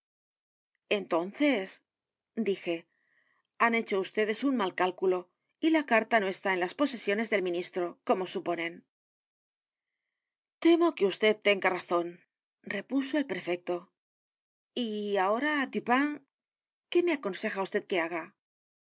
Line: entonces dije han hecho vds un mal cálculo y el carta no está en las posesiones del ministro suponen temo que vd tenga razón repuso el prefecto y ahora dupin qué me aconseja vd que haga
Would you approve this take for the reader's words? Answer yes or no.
no